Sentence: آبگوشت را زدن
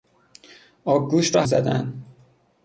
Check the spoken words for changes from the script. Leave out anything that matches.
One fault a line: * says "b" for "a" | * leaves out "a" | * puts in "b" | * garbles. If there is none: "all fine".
all fine